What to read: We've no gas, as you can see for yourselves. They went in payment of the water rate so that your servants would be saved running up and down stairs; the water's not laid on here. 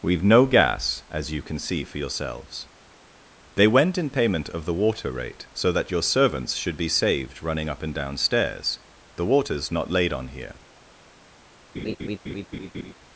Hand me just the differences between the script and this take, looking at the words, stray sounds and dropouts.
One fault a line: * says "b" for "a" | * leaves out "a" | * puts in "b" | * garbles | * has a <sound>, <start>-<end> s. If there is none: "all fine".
* says "should" for "would"
* has a laugh, 11.7-12.9 s